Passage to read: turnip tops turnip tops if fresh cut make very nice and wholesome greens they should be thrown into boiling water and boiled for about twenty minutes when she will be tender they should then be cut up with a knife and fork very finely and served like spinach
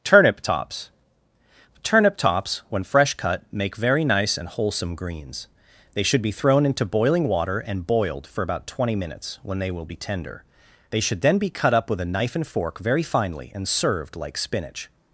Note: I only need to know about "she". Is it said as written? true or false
false